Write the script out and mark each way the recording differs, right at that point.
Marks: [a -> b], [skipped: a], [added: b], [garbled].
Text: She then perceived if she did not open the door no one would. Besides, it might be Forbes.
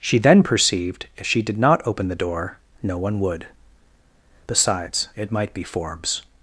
She then perceived if she did not open the door no one would. Besides, it might be Forbes.